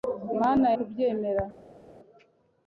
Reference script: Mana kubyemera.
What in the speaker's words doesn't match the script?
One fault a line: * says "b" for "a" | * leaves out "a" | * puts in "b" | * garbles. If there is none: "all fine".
all fine